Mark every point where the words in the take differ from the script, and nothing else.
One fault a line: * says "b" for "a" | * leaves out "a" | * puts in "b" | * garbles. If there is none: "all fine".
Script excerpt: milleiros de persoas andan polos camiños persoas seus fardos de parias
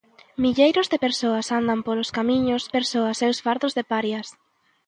all fine